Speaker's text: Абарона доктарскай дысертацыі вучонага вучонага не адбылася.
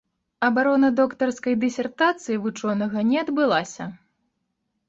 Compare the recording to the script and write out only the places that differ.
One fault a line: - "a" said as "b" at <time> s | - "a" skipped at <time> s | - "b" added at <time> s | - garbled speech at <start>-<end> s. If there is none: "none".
- "вучонага" skipped at 3.1 s